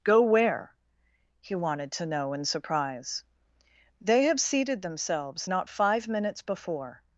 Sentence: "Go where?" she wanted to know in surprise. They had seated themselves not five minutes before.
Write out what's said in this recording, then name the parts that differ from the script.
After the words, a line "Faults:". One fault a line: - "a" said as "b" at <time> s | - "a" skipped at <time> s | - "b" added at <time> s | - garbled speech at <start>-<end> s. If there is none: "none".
"Go where?" he wanted to know in surprise. They have seated themselves not five minutes before.
Faults:
- "she" said as "he" at 1.4 s
- "had" said as "have" at 4.2 s